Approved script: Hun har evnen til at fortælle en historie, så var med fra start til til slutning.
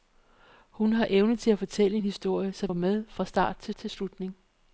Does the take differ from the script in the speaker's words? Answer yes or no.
no